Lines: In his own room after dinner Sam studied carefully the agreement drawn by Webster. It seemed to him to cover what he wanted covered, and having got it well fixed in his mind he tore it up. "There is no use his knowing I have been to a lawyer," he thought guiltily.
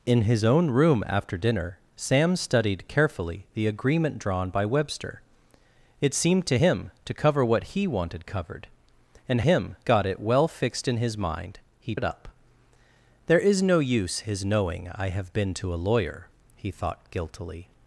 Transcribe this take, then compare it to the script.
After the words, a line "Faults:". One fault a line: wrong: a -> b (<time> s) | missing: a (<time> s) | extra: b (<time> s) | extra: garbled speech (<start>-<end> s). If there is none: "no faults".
In his own room after dinner Sam studied carefully the agreement drawn by Webster. It seemed to him to cover what he wanted covered, and him got it well fixed in his mind he it up. "There is no use his knowing I have been to a lawyer," he thought guiltily.
Faults:
wrong: having -> him (9.4 s)
missing: tore (11.9 s)